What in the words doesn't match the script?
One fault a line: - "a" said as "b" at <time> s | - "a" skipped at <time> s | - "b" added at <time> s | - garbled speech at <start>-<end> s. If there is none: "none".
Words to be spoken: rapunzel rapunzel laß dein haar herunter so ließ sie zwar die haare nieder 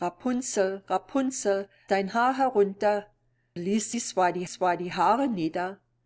- "laß" skipped at 1.7 s
- "so" skipped at 3.1 s
- "zwar die" added at 4.4 s